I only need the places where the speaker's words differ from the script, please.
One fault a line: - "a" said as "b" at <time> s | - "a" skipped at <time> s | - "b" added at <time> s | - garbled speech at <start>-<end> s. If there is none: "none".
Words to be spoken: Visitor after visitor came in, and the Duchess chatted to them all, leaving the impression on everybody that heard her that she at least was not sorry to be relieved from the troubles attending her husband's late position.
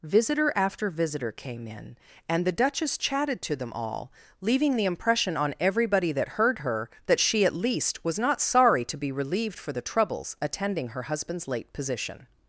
- "from" said as "for" at 9.6 s